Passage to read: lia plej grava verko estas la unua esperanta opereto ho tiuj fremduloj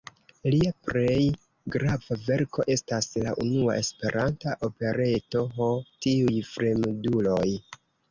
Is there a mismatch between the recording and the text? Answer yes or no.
no